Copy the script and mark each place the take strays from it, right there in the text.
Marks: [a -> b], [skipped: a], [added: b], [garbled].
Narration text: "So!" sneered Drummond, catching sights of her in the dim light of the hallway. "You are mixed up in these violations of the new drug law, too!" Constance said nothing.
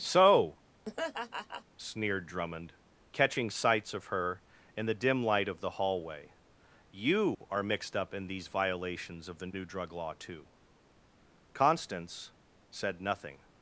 "So!" sneered Drummond, catching sights of her in the dim light of the hallway. "You are mixed up in these violations of the new drug law, too!" Constance said nothing.